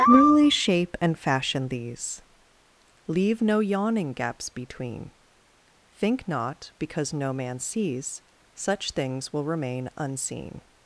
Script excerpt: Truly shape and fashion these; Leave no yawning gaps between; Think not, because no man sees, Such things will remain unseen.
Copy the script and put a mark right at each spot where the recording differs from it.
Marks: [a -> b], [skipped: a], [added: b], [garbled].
Truly shape and fashion these; Leave no yawning gaps between; Think not, because no man sees, Such things will remain unseen.